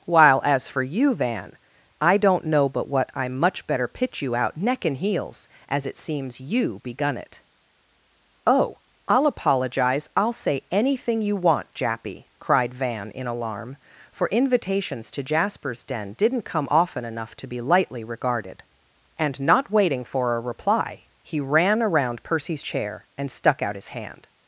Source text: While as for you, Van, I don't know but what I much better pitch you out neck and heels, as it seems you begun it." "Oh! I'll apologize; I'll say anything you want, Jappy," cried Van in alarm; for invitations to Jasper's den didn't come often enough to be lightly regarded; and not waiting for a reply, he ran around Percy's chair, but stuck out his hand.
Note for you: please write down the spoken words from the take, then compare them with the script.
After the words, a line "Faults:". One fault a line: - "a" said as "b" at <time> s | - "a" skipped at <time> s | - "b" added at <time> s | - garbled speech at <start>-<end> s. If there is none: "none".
While as for you, Van, I don't know but what I much better pitch you out neck and heels, as it seems you begun it." "Oh! I'll apologize; I'll say anything you want, Jappy," cried Van in alarm; for invitations to Jasper's den didn't come often enough to be lightly regarded; and not waiting for a reply, he ran around Percy's chair, and stuck out his hand.
Faults:
- "but" said as "and" at 23.2 s